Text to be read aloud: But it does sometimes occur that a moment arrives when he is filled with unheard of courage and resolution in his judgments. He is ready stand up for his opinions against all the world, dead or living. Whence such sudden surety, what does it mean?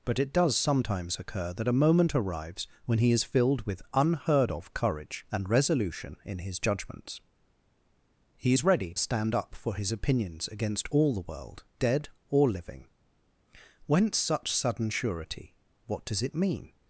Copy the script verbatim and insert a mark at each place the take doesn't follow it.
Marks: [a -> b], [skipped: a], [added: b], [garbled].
But it does sometimes occur that a moment arrives when he is filled with unheard of courage and resolution in his judgments. He is ready stand up for his opinions against all the world, dead or living. Whence such sudden surety, what does it mean?